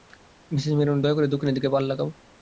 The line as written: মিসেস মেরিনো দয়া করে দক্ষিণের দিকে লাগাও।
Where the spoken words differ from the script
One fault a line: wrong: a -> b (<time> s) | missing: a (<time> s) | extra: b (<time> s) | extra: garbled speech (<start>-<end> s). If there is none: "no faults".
extra: পাল (1.7 s)